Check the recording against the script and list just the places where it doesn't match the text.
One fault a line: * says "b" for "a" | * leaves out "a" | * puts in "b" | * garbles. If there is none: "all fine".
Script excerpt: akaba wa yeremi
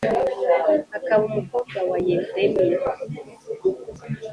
* puts in "umukobwa"